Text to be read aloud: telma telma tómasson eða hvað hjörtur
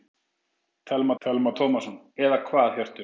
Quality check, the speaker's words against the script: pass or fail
pass